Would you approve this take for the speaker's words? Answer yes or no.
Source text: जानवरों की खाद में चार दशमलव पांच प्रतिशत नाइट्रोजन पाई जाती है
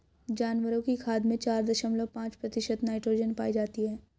yes